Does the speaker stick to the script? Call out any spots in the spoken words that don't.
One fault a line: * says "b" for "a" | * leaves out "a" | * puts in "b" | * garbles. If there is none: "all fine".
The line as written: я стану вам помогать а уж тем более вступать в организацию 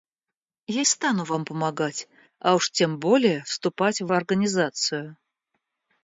all fine